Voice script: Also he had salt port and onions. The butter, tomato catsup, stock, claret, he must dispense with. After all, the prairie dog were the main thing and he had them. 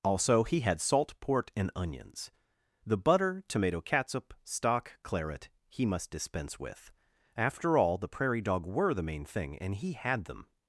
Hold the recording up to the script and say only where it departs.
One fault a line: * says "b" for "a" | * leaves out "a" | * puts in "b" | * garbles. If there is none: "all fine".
all fine